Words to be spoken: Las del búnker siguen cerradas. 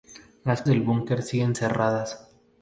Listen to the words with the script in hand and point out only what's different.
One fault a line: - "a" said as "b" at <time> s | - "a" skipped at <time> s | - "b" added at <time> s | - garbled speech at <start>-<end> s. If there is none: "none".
none